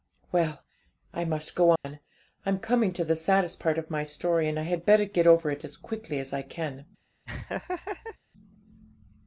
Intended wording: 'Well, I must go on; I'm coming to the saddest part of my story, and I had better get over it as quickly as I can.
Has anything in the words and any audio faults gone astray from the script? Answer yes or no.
yes